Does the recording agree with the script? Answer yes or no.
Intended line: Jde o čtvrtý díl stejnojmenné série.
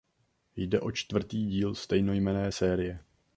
yes